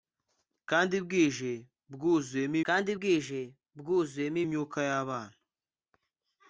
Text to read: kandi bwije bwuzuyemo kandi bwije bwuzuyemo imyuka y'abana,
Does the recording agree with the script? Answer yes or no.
yes